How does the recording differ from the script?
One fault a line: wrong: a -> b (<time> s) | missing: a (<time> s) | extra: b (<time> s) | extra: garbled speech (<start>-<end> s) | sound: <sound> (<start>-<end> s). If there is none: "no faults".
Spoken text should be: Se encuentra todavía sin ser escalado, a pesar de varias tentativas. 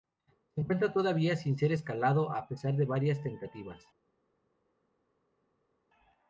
no faults